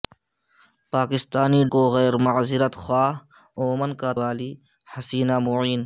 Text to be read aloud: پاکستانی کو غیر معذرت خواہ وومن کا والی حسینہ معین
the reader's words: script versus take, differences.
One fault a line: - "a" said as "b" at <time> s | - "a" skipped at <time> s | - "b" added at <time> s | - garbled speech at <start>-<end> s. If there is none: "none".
none